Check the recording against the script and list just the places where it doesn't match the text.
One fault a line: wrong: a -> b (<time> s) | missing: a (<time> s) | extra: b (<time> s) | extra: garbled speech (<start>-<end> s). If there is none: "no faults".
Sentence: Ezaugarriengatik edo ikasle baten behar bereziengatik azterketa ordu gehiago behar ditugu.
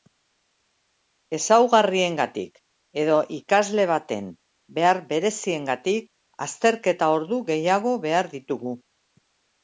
no faults